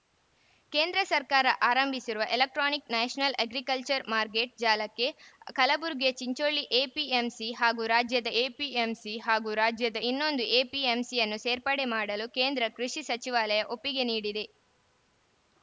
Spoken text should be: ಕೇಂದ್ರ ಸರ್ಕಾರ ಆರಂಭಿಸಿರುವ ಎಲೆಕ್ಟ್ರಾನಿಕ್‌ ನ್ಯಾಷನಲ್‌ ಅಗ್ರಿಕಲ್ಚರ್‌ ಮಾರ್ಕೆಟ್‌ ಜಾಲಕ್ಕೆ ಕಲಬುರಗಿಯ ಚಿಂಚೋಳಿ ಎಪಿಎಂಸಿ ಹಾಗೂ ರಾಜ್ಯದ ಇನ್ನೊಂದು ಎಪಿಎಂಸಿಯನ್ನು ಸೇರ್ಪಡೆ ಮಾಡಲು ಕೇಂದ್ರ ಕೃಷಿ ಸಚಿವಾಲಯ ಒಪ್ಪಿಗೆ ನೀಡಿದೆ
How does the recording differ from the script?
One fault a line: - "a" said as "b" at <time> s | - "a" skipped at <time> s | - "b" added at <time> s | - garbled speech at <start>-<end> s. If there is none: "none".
- "ಎಪಿಎಂಸಿ ಹಾಗೂ ರಾಜ್ಯದ" added at 8.4 s